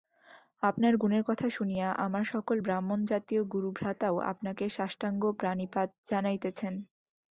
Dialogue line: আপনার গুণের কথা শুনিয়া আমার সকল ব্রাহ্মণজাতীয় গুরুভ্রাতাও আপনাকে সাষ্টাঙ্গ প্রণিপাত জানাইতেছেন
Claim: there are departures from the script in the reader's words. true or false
false